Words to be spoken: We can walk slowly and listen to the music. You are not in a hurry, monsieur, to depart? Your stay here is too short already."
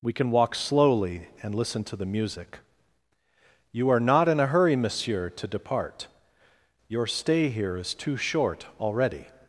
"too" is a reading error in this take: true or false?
false